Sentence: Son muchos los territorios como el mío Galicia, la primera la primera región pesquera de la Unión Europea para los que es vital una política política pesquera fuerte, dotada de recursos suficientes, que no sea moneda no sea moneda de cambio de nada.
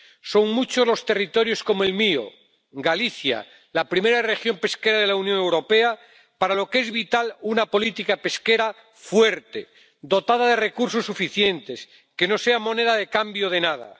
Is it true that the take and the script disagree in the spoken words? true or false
true